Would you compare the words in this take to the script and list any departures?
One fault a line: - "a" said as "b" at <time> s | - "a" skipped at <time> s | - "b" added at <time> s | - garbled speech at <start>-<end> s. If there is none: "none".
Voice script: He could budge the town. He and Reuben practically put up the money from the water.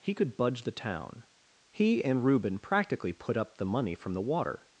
none